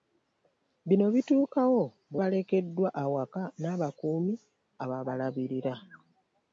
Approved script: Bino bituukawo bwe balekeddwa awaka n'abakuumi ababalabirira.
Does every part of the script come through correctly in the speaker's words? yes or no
yes